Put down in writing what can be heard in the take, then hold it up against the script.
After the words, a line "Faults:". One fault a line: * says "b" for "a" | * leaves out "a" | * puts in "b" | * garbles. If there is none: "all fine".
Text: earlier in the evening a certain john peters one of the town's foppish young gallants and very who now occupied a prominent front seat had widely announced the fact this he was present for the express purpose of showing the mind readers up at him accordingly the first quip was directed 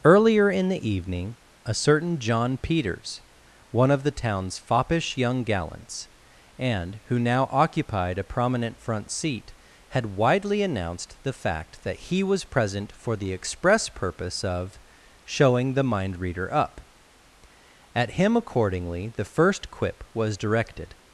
earlier in the evening a certain john peters one of the town's foppish young gallants and who now occupied a prominent front seat had widely announced the fact that he was present for the express purpose of showing the mind reader up at him accordingly the first quip was directed
Faults:
* leaves out "very"
* says "that" for "this"
* says "reader" for "readers"